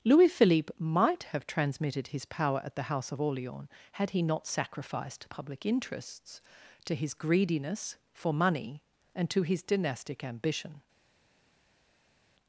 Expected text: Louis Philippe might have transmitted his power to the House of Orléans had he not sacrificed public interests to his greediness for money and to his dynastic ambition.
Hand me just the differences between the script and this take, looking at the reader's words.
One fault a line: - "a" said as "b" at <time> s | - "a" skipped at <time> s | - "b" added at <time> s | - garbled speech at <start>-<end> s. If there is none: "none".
- "to" said as "at" at 2.6 s